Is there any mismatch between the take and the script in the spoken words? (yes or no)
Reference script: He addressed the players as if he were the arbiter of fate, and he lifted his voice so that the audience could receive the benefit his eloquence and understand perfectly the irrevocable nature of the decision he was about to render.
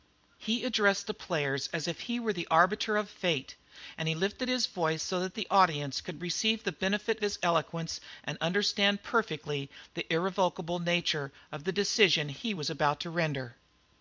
no